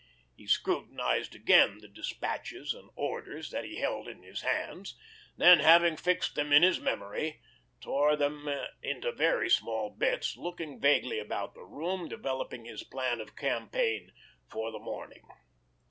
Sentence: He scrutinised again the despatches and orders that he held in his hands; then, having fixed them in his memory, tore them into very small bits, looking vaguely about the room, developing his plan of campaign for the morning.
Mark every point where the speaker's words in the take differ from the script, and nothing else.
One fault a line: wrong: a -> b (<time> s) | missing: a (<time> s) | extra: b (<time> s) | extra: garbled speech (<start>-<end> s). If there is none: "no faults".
no faults